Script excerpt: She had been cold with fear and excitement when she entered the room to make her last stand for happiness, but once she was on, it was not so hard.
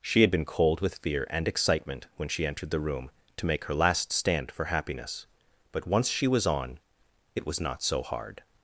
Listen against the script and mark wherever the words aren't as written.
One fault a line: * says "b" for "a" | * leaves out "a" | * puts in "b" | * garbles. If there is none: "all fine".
all fine